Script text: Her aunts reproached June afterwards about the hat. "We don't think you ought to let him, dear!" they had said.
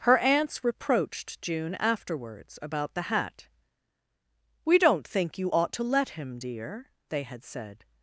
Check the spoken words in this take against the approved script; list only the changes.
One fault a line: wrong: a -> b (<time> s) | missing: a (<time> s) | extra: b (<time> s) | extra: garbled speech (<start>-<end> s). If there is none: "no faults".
no faults